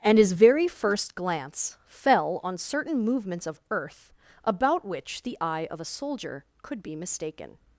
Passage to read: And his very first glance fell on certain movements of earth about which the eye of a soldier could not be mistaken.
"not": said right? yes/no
no